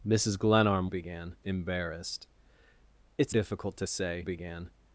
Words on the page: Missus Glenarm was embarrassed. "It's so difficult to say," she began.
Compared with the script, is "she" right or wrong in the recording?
wrong